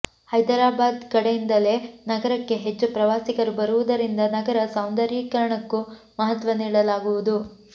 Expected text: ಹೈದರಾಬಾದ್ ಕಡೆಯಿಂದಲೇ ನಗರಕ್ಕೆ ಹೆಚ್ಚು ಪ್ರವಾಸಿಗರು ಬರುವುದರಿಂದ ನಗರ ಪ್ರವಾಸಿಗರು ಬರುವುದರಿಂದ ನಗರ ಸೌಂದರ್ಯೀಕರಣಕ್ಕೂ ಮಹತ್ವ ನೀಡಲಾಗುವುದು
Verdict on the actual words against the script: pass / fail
fail